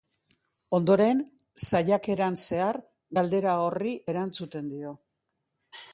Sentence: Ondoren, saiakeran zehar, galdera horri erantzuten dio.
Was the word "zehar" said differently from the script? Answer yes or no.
no